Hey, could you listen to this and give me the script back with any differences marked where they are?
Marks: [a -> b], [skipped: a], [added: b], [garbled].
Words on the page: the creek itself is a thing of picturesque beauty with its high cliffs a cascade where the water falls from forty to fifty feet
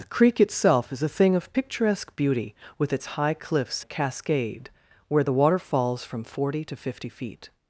the creek itself is a thing of picturesque beauty with its high cliffs a cascade where the water falls from forty to fifty feet